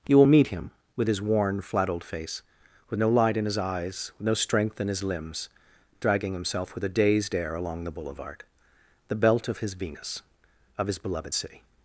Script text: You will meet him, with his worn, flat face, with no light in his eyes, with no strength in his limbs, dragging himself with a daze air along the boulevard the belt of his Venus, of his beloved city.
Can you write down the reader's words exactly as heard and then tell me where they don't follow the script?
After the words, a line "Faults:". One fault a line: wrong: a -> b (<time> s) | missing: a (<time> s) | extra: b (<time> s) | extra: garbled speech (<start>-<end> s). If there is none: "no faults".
You will meet him, with his worn, flat old face, with no light in his eyes, with no strength in his limbs, dragging himself with a dazed air along the boulevard the belt of his Venus, of his beloved city.
Faults:
extra: old (1.9 s)
wrong: daze -> dazed (6.9 s)